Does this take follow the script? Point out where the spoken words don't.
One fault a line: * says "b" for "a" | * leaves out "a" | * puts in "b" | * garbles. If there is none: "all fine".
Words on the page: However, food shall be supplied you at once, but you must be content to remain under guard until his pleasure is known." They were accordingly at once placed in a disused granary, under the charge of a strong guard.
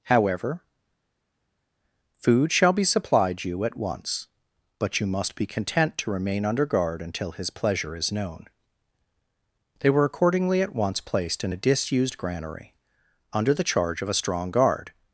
all fine